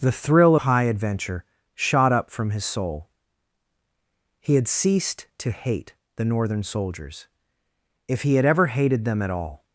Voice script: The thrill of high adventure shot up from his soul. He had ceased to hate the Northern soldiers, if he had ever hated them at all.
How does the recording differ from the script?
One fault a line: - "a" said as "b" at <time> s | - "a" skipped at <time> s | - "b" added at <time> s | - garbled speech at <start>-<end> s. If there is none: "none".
- "of" skipped at 0.6 s